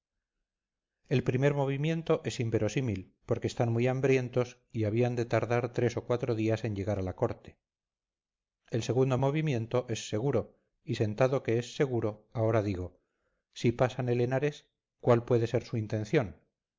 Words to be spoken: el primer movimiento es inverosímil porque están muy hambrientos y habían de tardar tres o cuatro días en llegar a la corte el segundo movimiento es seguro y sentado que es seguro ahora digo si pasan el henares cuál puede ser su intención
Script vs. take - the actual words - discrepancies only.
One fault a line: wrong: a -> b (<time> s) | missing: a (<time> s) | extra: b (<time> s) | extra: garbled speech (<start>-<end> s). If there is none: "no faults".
no faults